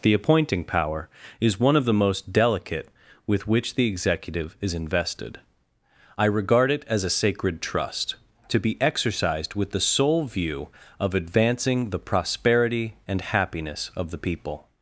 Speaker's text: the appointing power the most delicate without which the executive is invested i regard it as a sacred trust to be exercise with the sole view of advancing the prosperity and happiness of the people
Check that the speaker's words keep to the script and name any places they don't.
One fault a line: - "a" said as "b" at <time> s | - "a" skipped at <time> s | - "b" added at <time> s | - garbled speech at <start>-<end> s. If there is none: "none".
- "is one of" added at 1.4 s
- "without" said as "with" at 3.3 s
- "exercise" said as "exercised" at 8.8 s